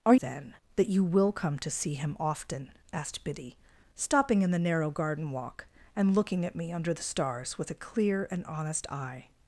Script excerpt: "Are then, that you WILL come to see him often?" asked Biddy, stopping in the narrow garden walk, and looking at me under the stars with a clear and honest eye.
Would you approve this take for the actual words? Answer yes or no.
yes